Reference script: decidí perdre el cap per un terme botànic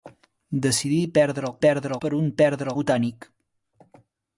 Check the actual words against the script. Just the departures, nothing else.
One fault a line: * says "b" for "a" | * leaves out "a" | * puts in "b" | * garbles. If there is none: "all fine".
* says "perdre" for "cap"
* says "perdre" for "terme"